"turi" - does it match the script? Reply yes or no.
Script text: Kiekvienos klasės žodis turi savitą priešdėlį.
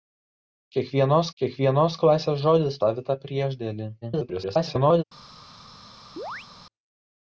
no